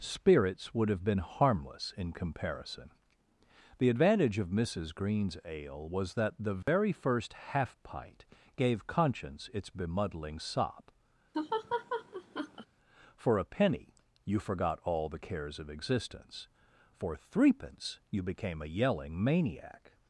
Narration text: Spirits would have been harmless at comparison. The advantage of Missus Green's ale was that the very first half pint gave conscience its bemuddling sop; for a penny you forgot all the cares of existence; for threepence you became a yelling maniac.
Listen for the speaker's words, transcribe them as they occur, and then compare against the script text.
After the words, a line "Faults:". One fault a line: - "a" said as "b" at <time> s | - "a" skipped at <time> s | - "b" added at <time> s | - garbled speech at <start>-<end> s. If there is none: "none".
Spirits would have been harmless in comparison. The advantage of Missus Green's ale was that the very first half pint gave conscience its bemuddling sop; for a penny you forgot all the cares of existence; for threepence you became a yelling maniac.
Faults:
- "at" said as "in" at 1.9 s